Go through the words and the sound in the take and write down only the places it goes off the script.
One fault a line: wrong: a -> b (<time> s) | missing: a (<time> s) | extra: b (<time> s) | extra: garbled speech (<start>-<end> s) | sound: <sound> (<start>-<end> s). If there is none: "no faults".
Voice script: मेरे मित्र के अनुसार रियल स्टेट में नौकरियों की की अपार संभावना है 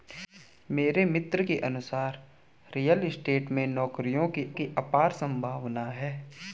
no faults